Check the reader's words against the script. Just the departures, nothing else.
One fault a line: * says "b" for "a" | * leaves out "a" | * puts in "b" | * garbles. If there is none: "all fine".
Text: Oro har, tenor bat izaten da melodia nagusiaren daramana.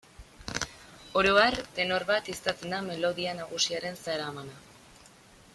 all fine